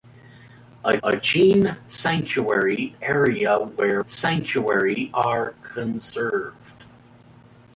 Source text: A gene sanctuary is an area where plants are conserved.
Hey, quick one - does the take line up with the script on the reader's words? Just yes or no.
no